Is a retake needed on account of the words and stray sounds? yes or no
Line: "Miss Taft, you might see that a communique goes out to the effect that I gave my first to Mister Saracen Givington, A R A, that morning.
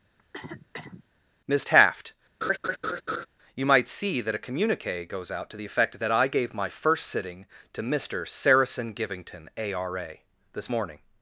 yes